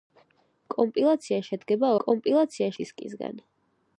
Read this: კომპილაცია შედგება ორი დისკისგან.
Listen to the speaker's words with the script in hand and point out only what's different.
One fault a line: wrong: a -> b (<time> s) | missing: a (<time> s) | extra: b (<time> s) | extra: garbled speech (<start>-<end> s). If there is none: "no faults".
wrong: ორი -> კომპილაცია (2.0 s)